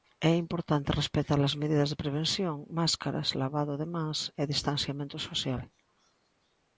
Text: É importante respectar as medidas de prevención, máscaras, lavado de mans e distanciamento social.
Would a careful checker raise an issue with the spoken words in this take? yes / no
no